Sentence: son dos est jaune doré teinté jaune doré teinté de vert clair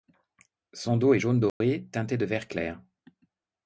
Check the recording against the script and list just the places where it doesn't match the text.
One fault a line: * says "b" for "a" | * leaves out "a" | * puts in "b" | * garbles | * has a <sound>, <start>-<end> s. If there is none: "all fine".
* has a dropout, 1.5-1.6 s
* leaves out "jaune doré teinté"